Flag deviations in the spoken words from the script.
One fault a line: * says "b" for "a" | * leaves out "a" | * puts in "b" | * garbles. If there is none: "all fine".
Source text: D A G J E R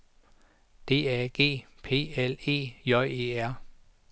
* puts in "P L E"